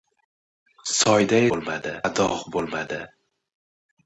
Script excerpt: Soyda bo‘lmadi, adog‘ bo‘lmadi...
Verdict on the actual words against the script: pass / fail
pass